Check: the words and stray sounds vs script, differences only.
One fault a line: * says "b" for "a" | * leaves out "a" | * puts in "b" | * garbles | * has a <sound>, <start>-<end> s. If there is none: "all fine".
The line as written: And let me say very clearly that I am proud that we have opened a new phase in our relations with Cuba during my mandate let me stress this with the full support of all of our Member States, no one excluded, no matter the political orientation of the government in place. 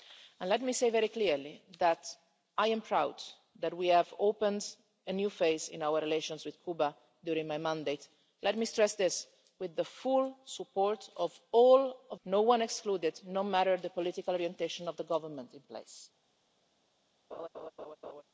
* leaves out "our Member States"
* has a laugh, 17.3-18.2 s